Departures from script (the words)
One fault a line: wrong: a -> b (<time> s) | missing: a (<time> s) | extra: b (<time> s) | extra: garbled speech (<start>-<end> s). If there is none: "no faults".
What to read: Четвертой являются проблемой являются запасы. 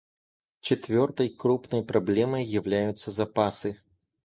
wrong: являются -> крупной (1.3 s)